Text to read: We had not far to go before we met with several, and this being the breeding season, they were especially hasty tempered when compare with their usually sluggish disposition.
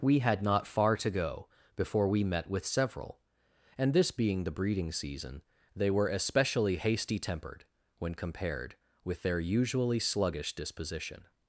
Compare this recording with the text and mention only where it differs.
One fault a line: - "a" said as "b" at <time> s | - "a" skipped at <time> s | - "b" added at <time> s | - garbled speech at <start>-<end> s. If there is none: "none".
- "compare" said as "compared" at 8.1 s